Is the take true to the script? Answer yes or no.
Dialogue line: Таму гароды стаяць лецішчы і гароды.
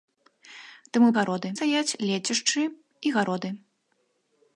yes